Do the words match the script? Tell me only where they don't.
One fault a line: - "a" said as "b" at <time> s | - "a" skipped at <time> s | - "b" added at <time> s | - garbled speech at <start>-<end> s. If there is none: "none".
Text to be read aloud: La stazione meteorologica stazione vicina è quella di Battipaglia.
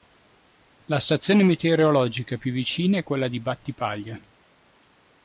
- "stazione" said as "più" at 2.4 s